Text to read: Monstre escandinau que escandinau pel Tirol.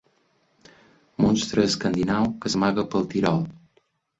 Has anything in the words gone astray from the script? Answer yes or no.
yes